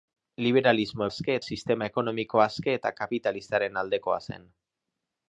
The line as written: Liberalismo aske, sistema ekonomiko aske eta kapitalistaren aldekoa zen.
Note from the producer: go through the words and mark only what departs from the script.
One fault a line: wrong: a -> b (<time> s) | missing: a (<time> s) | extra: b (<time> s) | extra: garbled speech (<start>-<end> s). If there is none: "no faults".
no faults